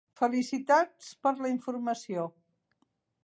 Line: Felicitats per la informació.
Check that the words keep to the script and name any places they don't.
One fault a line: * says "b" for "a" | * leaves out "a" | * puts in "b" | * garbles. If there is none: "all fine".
all fine